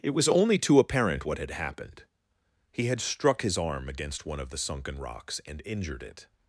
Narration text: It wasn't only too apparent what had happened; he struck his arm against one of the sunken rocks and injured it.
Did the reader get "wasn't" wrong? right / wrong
wrong